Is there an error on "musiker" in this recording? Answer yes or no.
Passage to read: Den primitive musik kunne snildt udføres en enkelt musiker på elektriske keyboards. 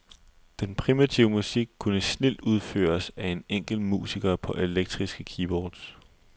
no